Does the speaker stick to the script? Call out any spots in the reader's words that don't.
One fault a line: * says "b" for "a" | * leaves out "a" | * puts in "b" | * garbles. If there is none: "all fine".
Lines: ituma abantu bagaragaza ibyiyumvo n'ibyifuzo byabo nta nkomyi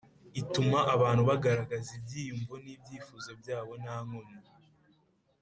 all fine